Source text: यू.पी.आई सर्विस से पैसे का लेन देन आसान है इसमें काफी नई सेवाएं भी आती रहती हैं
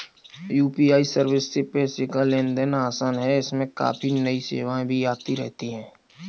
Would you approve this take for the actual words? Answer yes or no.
yes